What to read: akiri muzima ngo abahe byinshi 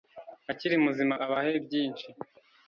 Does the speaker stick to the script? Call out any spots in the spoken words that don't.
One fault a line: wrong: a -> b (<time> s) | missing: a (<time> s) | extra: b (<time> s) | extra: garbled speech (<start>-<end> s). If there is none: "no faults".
missing: ngo (1.1 s)